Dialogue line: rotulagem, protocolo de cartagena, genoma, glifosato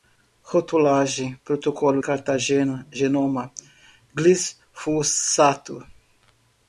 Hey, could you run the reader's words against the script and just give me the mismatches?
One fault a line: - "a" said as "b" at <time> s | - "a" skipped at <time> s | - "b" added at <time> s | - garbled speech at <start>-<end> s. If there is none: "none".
- "de" skipped at 2.0 s